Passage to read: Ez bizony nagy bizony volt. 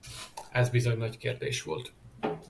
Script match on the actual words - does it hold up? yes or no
no